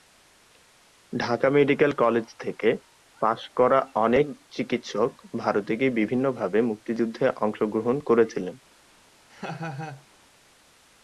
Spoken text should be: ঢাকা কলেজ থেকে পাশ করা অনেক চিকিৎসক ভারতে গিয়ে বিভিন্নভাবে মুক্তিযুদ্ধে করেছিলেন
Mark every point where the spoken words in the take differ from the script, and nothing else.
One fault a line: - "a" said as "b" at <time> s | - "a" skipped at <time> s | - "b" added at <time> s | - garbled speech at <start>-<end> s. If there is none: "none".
- "মেডিকেল" added at 1.5 s
- "অংশগ্রহণ" added at 7.4 s